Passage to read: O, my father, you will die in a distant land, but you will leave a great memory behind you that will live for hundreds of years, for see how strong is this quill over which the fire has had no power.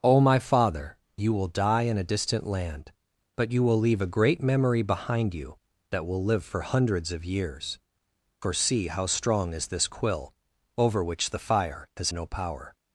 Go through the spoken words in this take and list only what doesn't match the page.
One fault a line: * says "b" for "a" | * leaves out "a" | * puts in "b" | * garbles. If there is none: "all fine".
* leaves out "had"